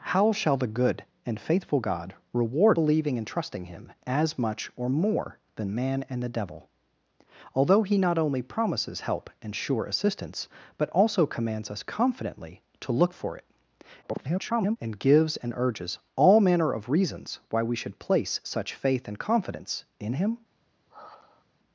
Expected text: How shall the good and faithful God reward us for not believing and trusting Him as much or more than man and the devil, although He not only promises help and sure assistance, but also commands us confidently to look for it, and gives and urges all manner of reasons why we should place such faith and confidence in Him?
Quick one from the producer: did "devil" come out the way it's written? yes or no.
yes